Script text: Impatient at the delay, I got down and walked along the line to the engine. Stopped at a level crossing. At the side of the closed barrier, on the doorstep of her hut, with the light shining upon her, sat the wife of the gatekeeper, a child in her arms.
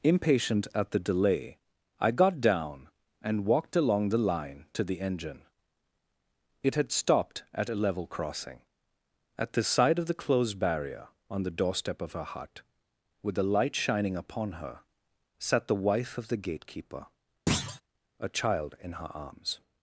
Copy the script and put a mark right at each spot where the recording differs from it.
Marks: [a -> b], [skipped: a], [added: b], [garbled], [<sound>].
Impatient at the delay, I got down and walked along the line to the engine. [added: It had] Stopped at a level crossing. At the side of the closed barrier, on the doorstep of her hut, with the light shining upon her, sat the wife of the gatekeeper, [thud] a child in her arms.